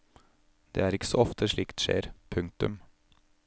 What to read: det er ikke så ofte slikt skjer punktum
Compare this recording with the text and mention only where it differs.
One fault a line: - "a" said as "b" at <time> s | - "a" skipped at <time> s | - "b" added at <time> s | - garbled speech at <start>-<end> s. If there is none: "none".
none